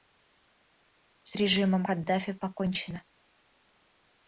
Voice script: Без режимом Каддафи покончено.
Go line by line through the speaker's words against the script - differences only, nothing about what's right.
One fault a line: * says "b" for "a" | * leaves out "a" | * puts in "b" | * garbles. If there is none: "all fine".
* says "С" for "Без"